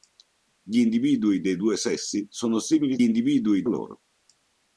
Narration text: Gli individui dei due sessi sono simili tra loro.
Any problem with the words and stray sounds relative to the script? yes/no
yes